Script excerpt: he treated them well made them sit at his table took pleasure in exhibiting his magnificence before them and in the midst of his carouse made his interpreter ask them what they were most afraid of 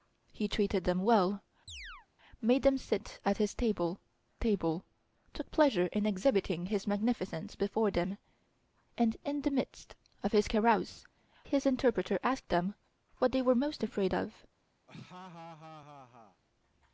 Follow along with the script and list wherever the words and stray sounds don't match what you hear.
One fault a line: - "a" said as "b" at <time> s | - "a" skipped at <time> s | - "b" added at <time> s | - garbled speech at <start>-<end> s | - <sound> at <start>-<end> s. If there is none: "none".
- chirp at 1.7-2.1 s
- "table" added at 4.4 s
- "made" skipped at 11.0 s
- laugh at 14.9-16.4 s